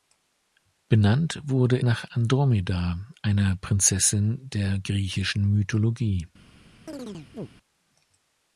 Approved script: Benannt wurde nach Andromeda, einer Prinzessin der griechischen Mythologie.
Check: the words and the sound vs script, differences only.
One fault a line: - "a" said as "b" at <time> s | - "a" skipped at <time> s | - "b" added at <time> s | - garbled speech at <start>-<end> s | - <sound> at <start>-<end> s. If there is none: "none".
- chirp at 6.9-7.5 s